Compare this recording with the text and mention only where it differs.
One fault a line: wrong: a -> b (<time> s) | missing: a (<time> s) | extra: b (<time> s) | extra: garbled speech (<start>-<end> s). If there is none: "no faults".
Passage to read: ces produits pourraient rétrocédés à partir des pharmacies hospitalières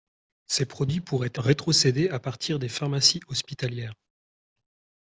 no faults